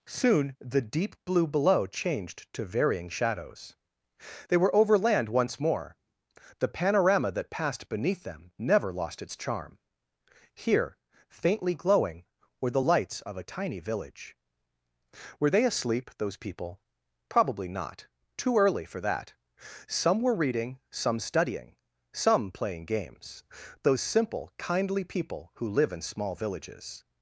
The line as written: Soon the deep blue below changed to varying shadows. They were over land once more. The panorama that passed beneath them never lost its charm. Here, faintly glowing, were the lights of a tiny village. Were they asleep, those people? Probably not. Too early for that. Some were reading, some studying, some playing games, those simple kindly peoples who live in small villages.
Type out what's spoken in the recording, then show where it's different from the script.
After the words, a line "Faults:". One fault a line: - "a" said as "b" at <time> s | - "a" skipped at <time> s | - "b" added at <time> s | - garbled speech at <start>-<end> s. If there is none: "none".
Soon the deep blue below changed to varying shadows. They were over land once more. The panorama that passed beneath them never lost its charm. Here, faintly glowing, were the lights of a tiny village. Were they asleep, those people? Probably not. Too early for that. Some were reading, some studying, some playing games, those simple kindly people who live in small villages.
Faults:
- "peoples" said as "people" at 25.0 s